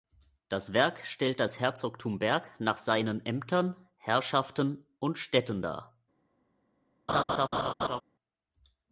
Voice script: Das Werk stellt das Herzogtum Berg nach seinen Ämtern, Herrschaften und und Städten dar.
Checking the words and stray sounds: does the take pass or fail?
fail